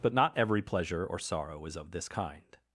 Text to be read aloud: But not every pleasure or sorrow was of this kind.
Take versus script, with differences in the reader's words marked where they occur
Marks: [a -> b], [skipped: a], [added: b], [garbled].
But not every pleasure or sorrow [was -> is] of this kind.